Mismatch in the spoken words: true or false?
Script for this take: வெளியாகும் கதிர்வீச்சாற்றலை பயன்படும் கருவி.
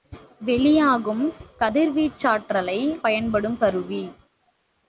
false